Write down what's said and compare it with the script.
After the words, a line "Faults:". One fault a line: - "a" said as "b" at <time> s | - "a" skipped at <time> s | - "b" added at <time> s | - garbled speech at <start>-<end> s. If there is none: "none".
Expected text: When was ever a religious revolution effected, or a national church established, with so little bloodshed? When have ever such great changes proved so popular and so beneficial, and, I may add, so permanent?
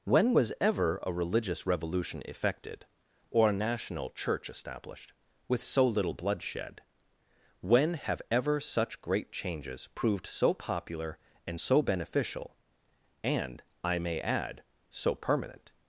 When was ever a religious revolution effected, or a national church established, with so little bloodshed? When have ever such great changes proved so popular and so beneficial, and, I may add, so permanent?
Faults:
none